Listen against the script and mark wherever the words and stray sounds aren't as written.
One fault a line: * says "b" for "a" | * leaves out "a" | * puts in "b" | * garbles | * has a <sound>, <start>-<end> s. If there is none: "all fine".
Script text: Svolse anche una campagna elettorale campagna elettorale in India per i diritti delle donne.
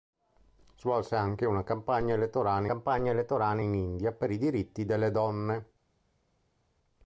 all fine